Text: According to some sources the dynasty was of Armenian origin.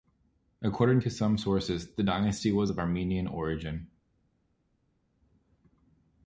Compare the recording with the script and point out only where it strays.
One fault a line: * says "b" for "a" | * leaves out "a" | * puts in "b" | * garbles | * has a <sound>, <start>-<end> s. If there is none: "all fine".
all fine